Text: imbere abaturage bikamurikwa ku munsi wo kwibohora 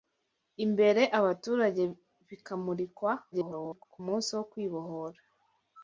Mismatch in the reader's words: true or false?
true